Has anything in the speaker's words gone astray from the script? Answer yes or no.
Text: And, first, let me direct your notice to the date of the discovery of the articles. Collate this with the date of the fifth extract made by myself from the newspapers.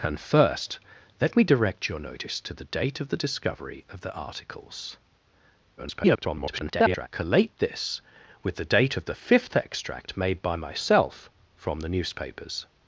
yes